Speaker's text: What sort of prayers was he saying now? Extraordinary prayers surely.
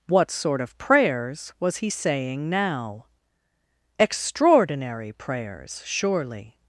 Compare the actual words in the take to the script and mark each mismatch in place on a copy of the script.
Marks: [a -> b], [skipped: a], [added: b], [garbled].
What sort of prayers was he saying now? Extraordinary prayers surely.